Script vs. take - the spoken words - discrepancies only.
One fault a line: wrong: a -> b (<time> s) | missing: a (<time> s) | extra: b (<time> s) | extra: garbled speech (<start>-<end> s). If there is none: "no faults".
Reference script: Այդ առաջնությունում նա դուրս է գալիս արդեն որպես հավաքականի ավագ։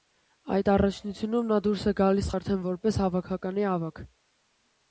no faults